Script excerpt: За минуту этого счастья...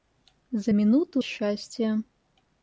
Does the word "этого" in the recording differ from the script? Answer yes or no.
yes